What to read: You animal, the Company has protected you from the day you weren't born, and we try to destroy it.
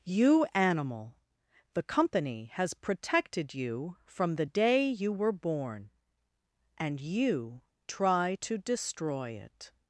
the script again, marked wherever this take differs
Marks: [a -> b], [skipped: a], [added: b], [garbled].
You animal, the Company has protected you from the day you [weren't -> were] born, and [we -> you] try to destroy it.